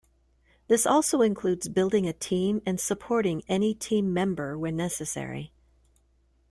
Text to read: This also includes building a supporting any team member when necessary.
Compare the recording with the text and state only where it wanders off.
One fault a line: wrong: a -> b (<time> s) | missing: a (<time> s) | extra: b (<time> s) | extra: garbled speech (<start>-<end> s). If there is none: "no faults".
extra: team and (2.1 s)